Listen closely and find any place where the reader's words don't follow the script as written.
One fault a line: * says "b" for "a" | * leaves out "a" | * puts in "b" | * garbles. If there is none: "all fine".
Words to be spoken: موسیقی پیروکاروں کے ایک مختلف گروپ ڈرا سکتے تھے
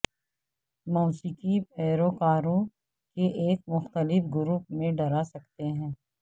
* puts in "میں"
* says "ہیں" for "تھے"